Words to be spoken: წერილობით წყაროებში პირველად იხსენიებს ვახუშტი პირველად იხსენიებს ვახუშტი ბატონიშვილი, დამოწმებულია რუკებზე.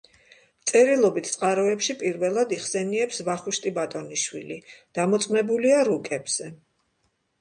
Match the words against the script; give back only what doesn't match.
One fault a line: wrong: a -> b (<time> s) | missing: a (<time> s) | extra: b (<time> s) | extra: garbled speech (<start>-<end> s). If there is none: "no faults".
missing: პირველად იხსენიებს ვახუშტი (3.7 s)